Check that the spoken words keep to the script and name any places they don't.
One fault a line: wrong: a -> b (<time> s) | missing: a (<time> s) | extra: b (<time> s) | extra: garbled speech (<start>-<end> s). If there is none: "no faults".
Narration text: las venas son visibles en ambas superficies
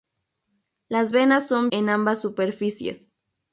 missing: visibles (1.7 s)